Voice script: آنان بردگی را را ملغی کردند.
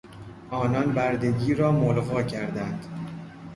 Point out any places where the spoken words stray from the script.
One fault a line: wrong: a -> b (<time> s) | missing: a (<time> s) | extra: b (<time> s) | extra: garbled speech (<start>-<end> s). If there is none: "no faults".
missing: را (1.7 s)